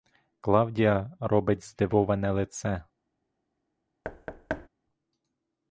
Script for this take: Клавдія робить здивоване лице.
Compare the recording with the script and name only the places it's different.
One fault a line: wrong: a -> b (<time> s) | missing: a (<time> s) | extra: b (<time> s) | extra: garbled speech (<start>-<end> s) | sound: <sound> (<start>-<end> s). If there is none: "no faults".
sound: thud (4.0-4.7 s)